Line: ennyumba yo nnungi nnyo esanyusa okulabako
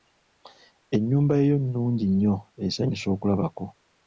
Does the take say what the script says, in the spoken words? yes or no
yes